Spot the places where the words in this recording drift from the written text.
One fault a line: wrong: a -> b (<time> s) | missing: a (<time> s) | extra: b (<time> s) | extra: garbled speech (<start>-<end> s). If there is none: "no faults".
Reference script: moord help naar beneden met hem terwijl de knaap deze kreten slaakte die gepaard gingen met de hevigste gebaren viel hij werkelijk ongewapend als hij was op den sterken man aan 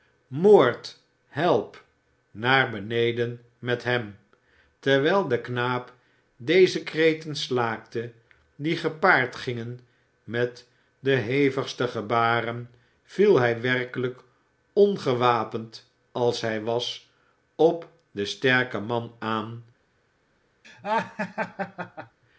no faults